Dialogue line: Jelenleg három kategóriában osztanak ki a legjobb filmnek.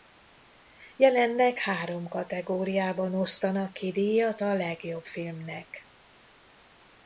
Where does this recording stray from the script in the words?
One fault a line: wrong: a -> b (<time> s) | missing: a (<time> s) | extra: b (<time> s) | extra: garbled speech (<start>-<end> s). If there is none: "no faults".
extra: díjat (3.9 s)